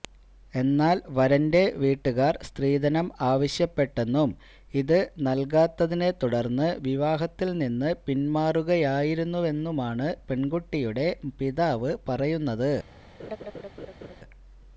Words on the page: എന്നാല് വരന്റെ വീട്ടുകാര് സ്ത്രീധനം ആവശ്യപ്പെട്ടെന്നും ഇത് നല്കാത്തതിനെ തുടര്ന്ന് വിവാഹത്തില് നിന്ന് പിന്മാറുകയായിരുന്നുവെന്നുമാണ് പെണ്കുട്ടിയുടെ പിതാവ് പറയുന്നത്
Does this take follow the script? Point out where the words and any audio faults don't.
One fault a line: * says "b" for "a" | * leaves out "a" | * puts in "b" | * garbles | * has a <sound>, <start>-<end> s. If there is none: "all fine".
* has a laugh, 13.2-14.2 s